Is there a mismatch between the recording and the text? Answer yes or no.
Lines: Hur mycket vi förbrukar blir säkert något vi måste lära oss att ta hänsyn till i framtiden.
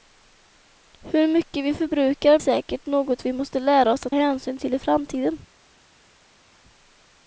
yes